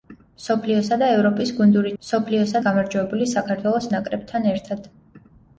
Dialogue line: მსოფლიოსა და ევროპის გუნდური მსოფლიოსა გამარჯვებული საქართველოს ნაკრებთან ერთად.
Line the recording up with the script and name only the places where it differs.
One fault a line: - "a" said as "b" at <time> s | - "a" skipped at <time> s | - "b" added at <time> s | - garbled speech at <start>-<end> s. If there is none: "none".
none